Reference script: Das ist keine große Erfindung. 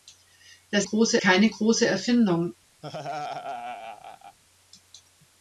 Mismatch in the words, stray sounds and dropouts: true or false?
true